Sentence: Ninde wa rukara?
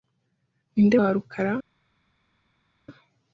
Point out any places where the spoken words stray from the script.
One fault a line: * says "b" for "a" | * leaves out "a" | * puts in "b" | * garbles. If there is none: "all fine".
all fine